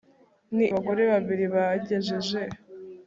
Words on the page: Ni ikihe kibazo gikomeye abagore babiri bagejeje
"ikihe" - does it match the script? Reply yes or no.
no